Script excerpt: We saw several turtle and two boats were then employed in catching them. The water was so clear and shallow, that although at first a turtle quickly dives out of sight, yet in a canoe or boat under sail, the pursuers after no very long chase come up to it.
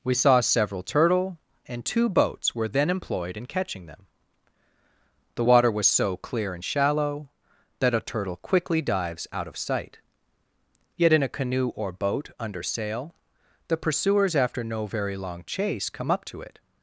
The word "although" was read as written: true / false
false